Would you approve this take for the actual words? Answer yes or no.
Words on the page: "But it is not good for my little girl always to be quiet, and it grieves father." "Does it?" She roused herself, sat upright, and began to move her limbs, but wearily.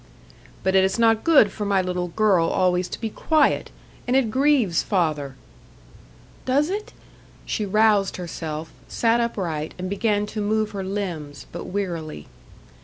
yes